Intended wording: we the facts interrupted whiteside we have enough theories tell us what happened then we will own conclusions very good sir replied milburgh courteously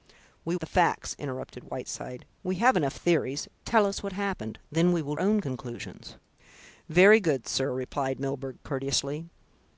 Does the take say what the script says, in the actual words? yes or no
yes